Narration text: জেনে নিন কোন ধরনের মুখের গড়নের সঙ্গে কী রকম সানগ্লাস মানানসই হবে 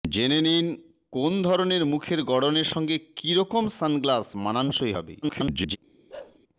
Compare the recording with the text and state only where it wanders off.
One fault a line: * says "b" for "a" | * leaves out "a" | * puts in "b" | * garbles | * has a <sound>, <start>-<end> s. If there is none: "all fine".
* garbles
* has a bark, 6.1-6.4 s